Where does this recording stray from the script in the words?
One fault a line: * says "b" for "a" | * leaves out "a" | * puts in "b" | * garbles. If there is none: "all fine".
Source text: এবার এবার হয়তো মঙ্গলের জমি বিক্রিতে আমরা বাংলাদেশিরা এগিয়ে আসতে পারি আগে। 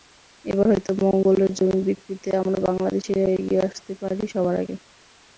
* leaves out "এবার"
* puts in "সবার"